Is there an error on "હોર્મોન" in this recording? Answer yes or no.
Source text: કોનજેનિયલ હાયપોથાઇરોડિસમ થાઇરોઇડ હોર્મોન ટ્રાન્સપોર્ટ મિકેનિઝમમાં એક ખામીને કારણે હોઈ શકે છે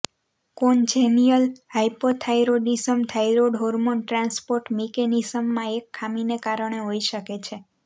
no